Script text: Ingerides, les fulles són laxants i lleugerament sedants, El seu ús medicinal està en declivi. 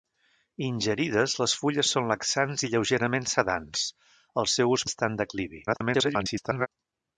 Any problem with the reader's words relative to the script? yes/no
yes